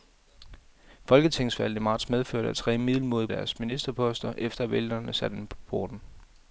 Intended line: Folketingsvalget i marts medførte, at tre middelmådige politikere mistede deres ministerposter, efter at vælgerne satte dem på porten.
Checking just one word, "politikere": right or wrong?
wrong